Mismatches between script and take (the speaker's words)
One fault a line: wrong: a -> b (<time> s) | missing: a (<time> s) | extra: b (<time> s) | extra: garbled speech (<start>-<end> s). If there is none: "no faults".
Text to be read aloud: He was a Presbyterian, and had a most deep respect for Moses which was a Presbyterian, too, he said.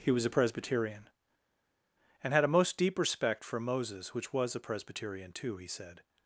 no faults